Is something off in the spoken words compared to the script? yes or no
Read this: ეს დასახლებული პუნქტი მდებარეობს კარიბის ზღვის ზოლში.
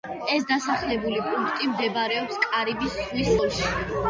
no